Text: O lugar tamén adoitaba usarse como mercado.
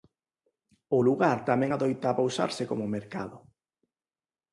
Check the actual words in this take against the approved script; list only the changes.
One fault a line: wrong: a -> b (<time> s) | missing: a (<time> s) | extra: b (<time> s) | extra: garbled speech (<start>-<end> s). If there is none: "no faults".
no faults